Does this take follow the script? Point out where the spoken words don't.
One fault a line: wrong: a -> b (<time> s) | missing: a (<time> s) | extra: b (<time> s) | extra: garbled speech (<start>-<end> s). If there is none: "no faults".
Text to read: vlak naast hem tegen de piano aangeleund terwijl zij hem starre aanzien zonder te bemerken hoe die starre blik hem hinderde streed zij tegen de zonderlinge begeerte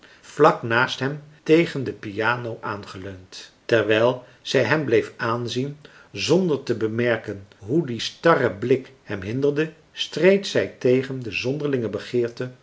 wrong: starre -> bleef (4.8 s)